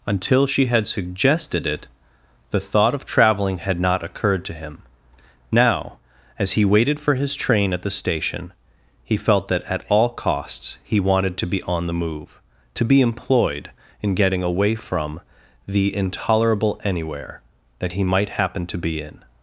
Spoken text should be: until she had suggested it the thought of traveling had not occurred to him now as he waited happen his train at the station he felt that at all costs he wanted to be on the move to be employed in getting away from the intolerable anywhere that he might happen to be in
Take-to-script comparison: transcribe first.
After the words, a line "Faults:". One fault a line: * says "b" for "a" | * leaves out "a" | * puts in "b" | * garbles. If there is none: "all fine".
until she had suggested it the thought of traveling had not occurred to him now as he waited for his train at the station he felt that at all costs he wanted to be on the move to be employed in getting away from the intolerable anywhere that he might happen to be in
Faults:
* says "for" for "happen"